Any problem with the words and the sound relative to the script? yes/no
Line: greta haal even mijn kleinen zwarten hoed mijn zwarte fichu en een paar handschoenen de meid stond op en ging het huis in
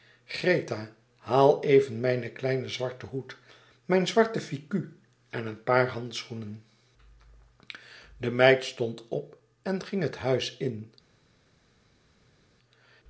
no